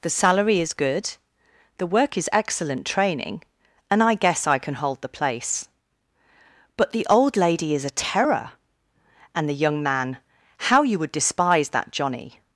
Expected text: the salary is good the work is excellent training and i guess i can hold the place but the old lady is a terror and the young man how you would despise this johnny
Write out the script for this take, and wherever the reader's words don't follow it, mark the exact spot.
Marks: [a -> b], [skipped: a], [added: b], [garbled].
the salary is good the work is excellent training and i guess i can hold the place but the old lady is a terror and the young man how you would despise [this -> that] johnny